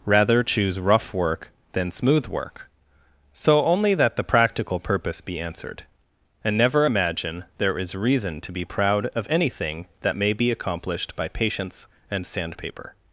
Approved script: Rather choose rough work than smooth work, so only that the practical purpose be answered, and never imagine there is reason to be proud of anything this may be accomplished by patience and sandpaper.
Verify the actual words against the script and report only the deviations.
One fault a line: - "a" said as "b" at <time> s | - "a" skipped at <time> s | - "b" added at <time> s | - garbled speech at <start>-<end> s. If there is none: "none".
- "this" said as "that" at 10.0 s